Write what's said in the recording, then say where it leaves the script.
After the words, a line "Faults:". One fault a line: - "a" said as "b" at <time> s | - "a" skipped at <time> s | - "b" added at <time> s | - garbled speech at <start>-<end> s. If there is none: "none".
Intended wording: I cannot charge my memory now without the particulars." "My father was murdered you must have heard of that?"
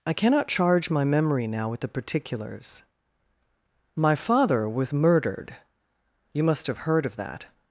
I cannot charge my memory now with the particulars." "My father was murdered you must have heard of that?"
Faults:
- "without" said as "with" at 1.7 s